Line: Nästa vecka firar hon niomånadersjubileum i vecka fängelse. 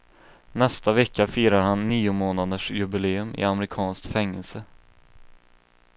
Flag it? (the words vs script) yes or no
yes